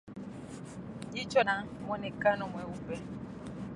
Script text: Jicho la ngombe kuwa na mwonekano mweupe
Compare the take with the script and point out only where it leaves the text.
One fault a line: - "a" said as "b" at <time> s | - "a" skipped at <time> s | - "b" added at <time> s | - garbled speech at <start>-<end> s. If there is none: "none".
- "la ngombe kuwa" skipped at 1.4 s